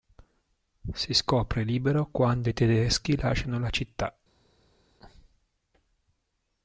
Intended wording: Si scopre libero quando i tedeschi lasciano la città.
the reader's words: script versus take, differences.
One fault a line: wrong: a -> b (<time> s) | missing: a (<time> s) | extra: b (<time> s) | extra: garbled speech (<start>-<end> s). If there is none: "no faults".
no faults